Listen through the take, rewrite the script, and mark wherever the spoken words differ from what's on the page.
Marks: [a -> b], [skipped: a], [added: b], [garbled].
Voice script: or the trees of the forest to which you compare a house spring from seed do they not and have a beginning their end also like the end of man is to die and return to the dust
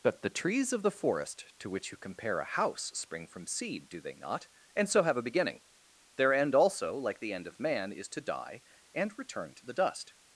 [or -> but] the trees of the forest to which you compare a house spring from seed do they not and [added: so] have a beginning their end also like the end of man is to die and return to the dust